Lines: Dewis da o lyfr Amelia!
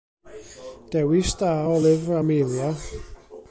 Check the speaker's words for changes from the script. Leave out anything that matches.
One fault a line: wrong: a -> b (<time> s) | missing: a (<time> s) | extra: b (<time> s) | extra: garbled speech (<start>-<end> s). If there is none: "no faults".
no faults